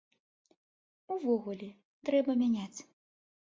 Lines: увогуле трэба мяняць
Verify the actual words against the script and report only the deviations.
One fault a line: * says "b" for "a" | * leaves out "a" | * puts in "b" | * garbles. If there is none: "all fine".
all fine